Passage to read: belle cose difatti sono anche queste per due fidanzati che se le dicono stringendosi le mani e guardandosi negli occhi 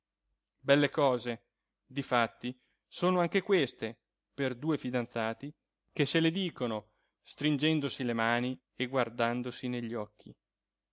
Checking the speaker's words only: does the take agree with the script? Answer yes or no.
yes